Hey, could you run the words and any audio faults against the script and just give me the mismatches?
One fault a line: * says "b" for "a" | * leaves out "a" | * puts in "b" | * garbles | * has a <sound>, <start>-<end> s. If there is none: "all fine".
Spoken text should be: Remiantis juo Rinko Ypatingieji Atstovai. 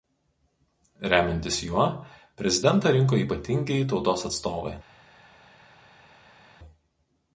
* puts in "Prezidentą"
* puts in "Tautos"